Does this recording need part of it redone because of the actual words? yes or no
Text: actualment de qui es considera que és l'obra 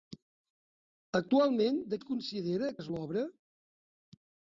yes